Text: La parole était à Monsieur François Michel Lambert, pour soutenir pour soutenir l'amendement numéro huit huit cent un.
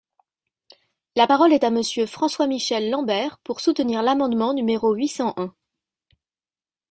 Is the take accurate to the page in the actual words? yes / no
no